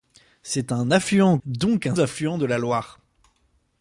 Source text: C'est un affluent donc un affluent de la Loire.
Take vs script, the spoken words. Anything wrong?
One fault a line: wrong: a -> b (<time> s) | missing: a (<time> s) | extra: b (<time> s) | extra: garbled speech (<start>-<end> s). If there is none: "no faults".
no faults